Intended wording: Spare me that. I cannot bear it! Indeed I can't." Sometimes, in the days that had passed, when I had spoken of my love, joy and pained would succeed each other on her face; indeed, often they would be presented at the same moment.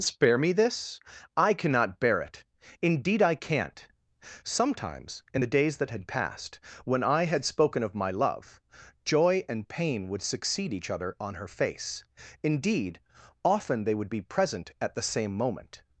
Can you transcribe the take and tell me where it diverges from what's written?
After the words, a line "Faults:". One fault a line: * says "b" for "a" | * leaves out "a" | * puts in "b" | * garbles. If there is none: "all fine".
Spare me this. I cannot bear it! Indeed I can't." Sometimes, in the days that had passed, when I had spoken of my love, joy and pain would succeed each other on her face; indeed, often they would be present at the same moment.
Faults:
* says "this" for "that"
* says "pain" for "pained"
* says "present" for "presented"